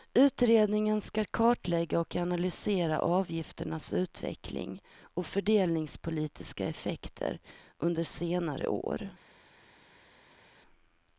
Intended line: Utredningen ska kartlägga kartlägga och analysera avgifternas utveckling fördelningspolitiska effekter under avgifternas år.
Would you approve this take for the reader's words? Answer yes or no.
no